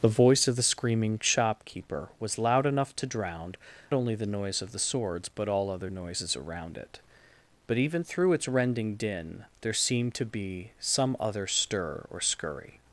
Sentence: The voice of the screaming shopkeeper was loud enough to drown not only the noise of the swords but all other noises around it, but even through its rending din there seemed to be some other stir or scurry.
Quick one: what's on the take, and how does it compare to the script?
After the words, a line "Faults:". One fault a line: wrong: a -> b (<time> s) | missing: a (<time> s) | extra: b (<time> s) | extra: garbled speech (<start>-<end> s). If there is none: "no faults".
The voice of the screaming shopkeeper was loud enough to drown only the noise of the swords but all other noises around it, but even through its rending din there seemed to be some other stir or scurry.
Faults:
missing: not (3.5 s)